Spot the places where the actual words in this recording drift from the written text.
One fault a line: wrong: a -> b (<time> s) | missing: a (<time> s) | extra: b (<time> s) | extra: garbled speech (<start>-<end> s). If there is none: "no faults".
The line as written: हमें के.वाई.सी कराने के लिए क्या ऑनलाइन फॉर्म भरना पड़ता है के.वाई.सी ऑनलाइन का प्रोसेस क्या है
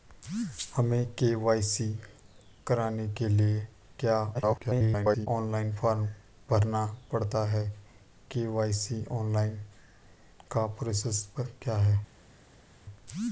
extra: garbled speech (4.3-5.3 s)